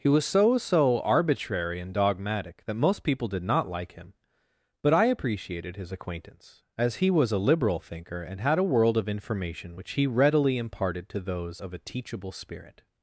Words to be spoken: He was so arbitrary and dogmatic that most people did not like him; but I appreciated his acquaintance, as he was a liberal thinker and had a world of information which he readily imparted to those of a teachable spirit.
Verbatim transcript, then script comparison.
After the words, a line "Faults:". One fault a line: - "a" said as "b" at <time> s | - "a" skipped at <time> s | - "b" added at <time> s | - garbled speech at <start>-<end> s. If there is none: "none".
He was so so arbitrary and dogmatic that most people did not like him; but I appreciated his acquaintance, as he was a liberal thinker and had a world of information which he readily imparted to those of a teachable spirit.
Faults:
- "so" added at 0.6 s